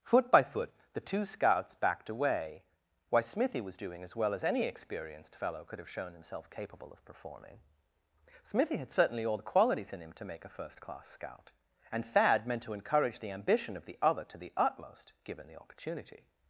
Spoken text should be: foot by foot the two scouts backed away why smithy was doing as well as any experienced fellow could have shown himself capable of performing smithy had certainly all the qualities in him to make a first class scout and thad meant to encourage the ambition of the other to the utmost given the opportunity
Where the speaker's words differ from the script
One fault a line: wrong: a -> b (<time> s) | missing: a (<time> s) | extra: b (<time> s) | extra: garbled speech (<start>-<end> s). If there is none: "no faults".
no faults